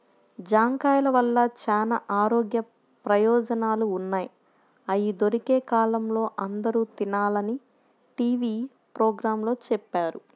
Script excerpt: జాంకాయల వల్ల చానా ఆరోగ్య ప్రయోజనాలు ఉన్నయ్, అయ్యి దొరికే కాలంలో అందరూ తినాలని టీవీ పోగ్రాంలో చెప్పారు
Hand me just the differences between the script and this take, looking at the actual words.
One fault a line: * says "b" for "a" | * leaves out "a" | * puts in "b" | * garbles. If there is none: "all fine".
all fine